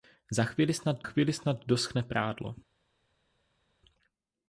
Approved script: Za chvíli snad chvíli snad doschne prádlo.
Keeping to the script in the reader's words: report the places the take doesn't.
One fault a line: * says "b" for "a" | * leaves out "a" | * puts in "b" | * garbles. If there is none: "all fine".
all fine